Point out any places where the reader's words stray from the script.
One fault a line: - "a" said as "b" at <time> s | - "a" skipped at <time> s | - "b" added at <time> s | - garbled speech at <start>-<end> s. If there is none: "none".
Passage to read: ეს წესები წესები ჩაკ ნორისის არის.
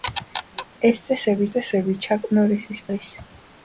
none